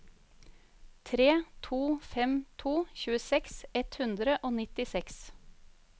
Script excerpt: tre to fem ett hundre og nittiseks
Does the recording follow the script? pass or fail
fail